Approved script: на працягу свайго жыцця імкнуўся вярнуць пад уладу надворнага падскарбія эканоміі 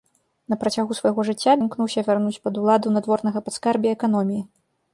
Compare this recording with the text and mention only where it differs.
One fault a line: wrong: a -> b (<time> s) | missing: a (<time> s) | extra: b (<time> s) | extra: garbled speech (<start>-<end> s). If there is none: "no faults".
no faults